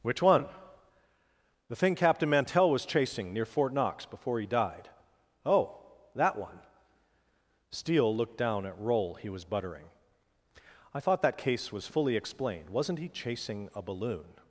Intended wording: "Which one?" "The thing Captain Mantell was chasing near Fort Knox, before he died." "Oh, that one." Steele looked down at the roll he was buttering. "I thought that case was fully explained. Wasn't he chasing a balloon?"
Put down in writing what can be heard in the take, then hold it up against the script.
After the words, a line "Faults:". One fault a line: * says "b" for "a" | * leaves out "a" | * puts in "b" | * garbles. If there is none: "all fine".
"Which one?" "The thing Captain Mantell was chasing near Fort Knox, before he died." "Oh, that one." Steele looked down at roll he was buttering. "I thought that case was fully explained. Wasn't he chasing a balloon?"
Faults:
* leaves out "the"